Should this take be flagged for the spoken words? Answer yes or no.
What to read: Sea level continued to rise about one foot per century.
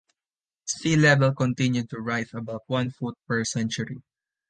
no